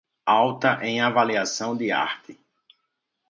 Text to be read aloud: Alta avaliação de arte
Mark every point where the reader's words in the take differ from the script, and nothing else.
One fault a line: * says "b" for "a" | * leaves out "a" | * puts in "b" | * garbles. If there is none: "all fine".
* puts in "em"